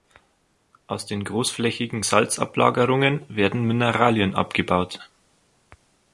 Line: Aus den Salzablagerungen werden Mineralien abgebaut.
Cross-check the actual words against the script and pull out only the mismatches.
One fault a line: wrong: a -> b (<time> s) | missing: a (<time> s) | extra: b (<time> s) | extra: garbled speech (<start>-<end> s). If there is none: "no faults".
extra: großflächigen (1.2 s)